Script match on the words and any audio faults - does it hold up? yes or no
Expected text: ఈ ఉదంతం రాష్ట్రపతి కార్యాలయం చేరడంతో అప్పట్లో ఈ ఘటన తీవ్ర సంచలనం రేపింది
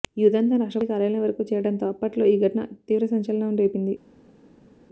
no